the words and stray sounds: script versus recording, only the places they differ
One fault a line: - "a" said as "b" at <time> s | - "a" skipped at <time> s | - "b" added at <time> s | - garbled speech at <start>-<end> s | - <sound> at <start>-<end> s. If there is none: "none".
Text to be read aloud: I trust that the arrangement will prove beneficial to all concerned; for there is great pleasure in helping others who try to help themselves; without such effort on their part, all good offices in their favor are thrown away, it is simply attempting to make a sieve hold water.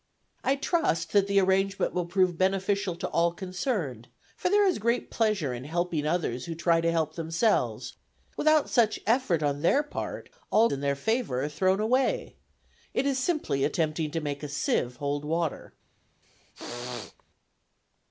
- "good offices" skipped at 10.7 s
- throat clearing at 16.2-17.2 s